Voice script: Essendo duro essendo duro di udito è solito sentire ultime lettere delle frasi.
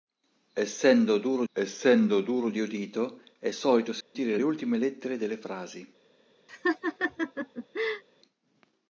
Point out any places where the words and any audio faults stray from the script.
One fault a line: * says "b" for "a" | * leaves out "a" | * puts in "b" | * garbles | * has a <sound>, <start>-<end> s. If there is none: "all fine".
* has a dropout, 4.0-4.2 s
* has a laugh, 6.5-8.0 s